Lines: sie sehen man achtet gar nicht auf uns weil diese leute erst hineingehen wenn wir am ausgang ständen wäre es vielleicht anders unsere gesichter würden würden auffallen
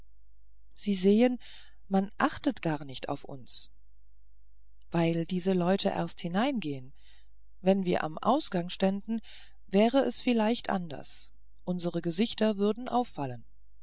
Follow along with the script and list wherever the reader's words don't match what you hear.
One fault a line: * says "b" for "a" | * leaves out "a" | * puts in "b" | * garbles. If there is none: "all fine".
* leaves out "würden"